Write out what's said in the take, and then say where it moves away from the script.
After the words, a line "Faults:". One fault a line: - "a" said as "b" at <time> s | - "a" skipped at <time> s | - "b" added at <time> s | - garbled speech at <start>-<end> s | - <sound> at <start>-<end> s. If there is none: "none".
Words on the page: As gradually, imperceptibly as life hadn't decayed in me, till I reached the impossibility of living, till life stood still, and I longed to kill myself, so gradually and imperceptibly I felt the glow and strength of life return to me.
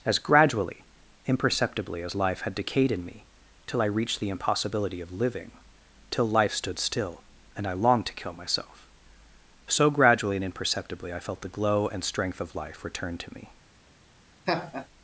As gradually, imperceptibly as life had decayed in me, till I reached the impossibility of living, till life stood still, and I longed to kill myself, so gradually and imperceptibly I felt the glow and strength of life return to me.
Faults:
- "hadn't" said as "had" at 2.4 s
- laugh at 14.5-14.9 s